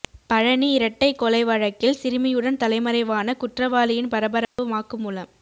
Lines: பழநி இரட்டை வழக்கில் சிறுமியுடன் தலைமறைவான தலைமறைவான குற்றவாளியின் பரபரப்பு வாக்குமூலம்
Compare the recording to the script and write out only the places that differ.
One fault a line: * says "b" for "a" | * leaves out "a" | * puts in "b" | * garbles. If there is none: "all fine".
* puts in "கொலை"
* leaves out "தலைமறைவான"